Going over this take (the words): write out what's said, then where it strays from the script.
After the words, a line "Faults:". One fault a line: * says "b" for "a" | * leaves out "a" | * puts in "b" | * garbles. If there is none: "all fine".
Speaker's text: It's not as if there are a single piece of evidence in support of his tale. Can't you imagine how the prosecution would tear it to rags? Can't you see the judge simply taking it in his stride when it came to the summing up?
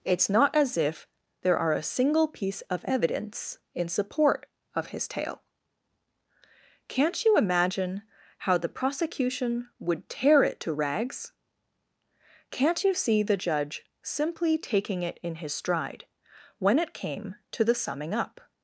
It's not as if there are a single piece of evidence in support of his tale. Can't you imagine how the prosecution would tear it to rags? Can't you see the judge simply taking it in his stride when it came to the summing up?
Faults:
all fine